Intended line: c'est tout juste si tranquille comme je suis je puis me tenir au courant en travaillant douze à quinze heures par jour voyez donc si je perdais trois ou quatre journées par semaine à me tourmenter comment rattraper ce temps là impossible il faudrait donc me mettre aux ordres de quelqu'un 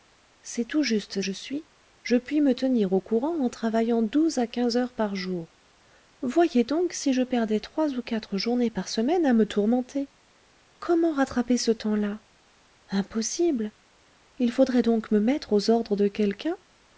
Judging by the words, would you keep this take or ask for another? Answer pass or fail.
fail